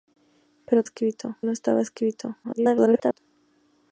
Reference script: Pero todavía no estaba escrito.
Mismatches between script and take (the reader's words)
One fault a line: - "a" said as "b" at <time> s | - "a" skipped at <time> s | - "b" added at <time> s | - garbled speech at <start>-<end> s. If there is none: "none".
- "todavía" said as "escrito" at 0.8 s
- garbled speech at 2.4-3.2 s